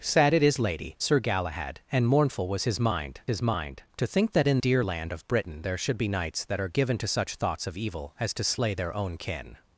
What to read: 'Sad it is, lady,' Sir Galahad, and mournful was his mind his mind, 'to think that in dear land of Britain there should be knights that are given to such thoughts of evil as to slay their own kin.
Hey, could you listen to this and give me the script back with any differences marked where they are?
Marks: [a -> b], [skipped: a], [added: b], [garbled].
'Sad it is, lady,' Sir Galahad, and mournful was his mind his mind, 'to think that in dear land of Britain there should be knights that are given to such thoughts of evil as to slay their own kin.